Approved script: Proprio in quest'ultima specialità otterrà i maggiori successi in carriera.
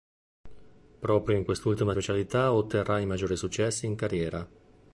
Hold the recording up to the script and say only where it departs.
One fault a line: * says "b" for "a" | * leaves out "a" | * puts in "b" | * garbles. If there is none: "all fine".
all fine